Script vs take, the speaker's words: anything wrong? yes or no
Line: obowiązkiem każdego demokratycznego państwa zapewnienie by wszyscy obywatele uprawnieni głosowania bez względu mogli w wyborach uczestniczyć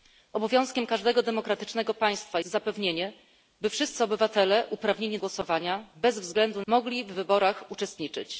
no